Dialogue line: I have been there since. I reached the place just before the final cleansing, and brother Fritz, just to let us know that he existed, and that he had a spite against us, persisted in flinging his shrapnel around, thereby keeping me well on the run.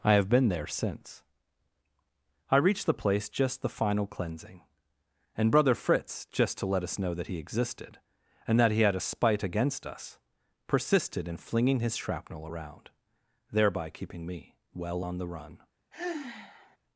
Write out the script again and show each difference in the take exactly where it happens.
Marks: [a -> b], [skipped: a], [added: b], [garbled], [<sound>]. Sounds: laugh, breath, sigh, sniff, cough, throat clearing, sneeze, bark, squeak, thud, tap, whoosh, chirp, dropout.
I have been there since. I reached the place just [skipped: before] the final cleansing, and brother Fritz, just to let us know that he existed, and that he had a spite against us, persisted in flinging his shrapnel around, thereby keeping me well on the run. [sigh]